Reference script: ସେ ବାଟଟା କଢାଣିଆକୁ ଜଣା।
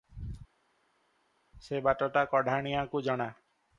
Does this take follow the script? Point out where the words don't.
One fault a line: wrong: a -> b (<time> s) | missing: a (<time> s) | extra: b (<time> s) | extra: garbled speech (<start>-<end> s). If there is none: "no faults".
no faults